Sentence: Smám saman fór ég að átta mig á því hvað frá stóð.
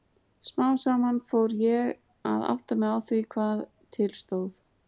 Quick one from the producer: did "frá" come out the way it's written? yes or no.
no